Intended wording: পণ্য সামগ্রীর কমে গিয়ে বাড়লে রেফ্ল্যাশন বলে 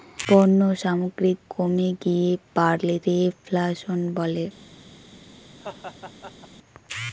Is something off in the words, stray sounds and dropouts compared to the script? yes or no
yes